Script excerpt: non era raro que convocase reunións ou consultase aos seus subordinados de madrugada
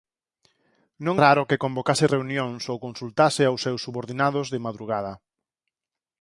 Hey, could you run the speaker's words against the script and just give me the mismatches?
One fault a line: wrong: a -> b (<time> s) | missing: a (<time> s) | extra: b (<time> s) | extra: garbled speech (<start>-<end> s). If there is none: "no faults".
missing: era (1.1 s)